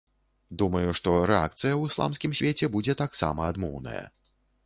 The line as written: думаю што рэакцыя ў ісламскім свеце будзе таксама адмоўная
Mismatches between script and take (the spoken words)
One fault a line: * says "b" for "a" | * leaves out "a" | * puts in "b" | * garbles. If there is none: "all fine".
all fine